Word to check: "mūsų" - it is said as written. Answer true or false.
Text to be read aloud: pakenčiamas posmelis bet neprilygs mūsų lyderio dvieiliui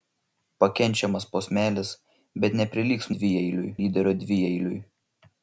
false